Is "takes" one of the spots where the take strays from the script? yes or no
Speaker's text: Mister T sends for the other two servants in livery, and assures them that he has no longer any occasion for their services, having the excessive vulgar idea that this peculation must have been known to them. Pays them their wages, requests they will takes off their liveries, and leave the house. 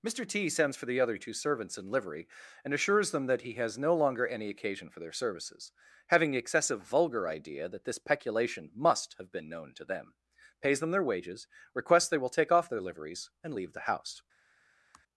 yes